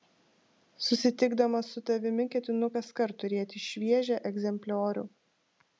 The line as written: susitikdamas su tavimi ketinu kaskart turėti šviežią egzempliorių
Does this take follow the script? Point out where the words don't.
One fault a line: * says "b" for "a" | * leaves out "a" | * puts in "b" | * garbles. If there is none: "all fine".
all fine